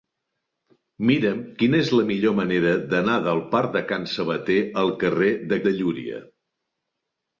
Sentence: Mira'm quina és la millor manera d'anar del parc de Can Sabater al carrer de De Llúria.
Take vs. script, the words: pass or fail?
pass